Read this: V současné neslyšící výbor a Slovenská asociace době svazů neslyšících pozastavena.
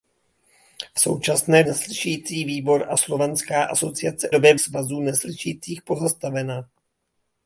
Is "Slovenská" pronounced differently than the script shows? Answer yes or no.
no